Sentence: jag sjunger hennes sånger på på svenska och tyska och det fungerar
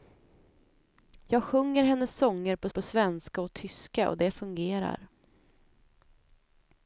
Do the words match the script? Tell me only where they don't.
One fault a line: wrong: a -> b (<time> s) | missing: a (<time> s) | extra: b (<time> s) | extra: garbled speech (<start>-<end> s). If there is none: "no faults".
no faults